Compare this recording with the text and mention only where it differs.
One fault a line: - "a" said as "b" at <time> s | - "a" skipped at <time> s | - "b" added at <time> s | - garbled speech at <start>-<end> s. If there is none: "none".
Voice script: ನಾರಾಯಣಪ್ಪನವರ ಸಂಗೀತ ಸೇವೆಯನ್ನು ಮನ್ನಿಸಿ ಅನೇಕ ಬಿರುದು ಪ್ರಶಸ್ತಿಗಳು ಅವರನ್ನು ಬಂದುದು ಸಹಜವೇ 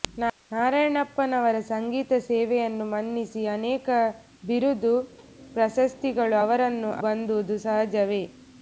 none